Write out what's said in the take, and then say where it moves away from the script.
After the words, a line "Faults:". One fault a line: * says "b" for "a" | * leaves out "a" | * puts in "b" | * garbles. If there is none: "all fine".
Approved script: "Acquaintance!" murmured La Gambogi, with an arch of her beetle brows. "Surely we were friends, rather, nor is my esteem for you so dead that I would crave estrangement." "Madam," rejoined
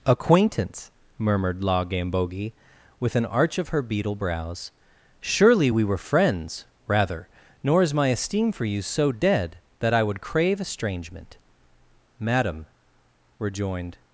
"Acquaintance!" murmured La Gambogi, with an arch of her beetle brows. "Surely we were friends, rather, nor is my esteem for you so dead that I would crave estrangement." "Madam," rejoined
Faults:
all fine